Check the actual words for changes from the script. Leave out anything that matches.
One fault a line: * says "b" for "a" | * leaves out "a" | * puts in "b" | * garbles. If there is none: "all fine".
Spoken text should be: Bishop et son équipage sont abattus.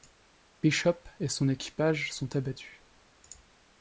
all fine